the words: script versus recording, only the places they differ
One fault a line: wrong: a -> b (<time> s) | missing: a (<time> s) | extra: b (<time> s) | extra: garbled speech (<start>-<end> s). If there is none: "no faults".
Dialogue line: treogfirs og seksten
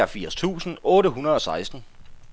extra: tusind otte hundrede (0.3 s)